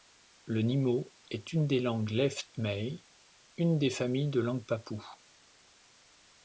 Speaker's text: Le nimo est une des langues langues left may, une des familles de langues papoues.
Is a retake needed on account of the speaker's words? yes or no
yes